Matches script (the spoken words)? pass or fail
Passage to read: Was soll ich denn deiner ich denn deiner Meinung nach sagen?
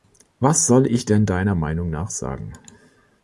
fail